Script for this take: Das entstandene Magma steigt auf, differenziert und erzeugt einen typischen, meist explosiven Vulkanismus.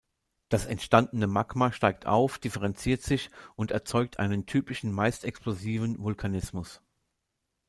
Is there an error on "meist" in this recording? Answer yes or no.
no